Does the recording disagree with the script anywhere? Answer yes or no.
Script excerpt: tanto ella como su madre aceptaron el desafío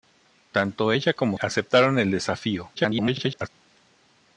yes